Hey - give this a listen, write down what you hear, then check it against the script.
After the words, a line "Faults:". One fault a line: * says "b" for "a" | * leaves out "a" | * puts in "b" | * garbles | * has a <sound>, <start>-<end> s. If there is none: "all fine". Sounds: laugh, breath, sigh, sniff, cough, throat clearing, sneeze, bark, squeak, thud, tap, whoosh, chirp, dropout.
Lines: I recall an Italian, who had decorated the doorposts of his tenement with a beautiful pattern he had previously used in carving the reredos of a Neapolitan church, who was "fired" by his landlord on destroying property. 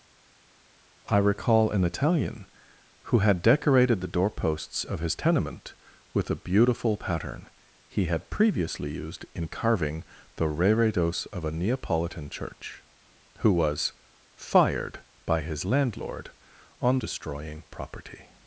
I recall an Italian, who had decorated the doorposts of his tenement with a beautiful pattern he had previously used in carving the reredos of a Neapolitan church, who was "fired" by his landlord on destroying property.
Faults:
all fine